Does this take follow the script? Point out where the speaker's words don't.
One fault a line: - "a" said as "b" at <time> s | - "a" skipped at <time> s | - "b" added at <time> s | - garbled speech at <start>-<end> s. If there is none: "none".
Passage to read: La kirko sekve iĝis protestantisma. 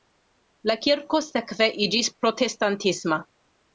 none